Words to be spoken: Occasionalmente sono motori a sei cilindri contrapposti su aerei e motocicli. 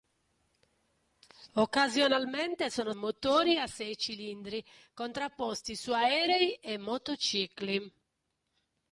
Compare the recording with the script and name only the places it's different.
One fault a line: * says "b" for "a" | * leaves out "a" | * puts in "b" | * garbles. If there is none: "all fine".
all fine